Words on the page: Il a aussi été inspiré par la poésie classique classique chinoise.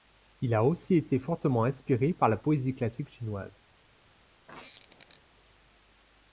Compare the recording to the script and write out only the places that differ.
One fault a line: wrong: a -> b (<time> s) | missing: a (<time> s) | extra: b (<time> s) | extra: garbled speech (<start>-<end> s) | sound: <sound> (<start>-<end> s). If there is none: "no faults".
extra: fortement (1.2 s)
missing: classique (3.1 s)
sound: squeak (4.5-5.2 s)